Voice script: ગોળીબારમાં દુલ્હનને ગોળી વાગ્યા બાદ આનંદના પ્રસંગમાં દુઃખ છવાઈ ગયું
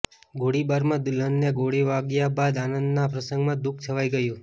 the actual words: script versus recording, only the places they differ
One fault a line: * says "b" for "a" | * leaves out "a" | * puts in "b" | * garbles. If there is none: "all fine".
all fine